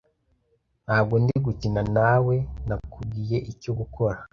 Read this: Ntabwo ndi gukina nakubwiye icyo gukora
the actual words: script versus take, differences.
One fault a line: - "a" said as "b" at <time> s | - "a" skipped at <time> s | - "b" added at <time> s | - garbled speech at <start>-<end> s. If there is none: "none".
- "nawe" added at 1.9 s